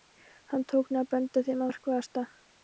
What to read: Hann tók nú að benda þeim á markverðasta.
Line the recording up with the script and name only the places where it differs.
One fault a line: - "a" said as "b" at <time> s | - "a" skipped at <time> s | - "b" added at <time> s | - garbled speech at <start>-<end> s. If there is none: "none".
none